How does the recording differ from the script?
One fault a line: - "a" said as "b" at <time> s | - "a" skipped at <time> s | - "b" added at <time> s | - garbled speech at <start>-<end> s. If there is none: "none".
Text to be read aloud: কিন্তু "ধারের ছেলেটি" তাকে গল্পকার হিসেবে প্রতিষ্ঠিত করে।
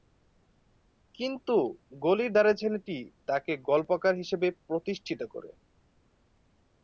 - "গলির" added at 2.0 s